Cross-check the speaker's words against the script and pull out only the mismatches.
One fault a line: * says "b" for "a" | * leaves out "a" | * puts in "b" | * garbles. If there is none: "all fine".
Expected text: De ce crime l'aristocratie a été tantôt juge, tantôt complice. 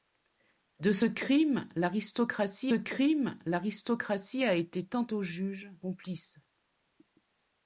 * puts in "crime l'aristocratie"
* leaves out "tantôt"